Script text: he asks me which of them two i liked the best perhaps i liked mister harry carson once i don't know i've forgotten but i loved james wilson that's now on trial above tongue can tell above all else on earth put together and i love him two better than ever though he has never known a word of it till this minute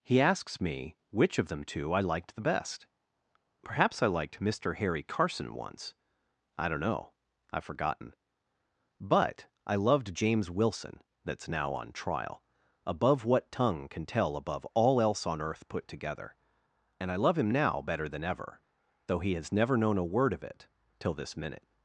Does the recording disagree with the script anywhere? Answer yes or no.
yes